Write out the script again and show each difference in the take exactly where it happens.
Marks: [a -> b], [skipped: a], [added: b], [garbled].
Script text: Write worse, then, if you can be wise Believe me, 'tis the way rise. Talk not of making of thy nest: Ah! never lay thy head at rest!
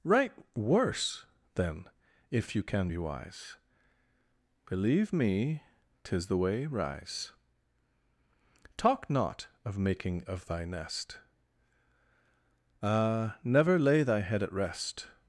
Write worse, then, if you can be wise Believe me, 'tis the way rise. Talk not of making of thy nest: Ah! never lay thy head at rest!